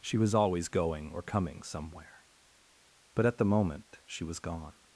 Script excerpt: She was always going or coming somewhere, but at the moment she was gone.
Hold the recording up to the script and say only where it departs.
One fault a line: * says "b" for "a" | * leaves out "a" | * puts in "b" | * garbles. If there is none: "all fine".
all fine